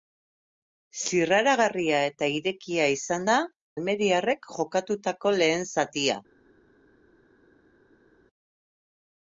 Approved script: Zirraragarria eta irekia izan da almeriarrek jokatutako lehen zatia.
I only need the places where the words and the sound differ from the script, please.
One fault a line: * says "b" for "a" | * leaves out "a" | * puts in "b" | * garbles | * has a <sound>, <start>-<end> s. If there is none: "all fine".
all fine